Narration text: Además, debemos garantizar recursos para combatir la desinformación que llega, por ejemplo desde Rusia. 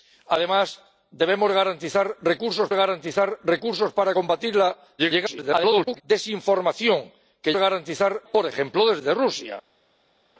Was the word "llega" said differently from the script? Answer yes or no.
yes